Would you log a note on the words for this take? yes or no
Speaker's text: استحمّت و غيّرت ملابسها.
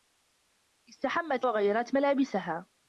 no